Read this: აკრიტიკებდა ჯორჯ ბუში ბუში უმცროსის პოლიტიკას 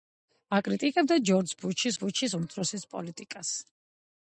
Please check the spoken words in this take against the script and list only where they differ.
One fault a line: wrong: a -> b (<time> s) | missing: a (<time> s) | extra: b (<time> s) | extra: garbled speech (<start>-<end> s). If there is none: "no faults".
no faults